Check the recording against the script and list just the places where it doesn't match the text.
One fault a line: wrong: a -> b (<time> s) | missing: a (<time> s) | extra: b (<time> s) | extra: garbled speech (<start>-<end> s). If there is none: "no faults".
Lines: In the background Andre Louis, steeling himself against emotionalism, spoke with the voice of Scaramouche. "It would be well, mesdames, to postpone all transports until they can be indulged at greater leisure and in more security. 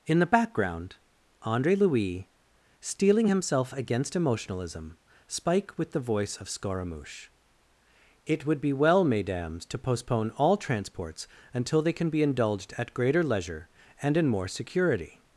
wrong: spoke -> spike (5.3 s)